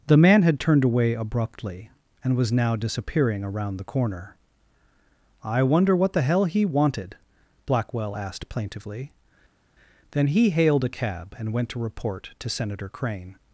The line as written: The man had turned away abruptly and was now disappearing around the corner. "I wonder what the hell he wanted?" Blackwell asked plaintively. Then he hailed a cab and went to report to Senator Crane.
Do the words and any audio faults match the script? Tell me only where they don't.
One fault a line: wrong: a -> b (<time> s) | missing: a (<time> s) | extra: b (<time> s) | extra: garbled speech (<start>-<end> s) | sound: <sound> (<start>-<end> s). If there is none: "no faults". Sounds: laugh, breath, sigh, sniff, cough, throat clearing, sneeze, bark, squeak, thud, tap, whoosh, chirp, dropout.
no faults